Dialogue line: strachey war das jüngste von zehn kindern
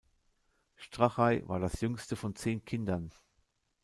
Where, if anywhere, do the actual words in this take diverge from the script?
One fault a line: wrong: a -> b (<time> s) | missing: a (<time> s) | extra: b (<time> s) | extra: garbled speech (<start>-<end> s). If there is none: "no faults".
no faults